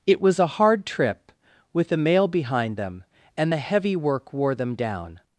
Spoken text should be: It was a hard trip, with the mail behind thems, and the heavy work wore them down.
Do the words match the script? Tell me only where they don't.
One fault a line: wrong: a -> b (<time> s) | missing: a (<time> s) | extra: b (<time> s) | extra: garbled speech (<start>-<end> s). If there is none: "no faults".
wrong: thems -> them (2.8 s)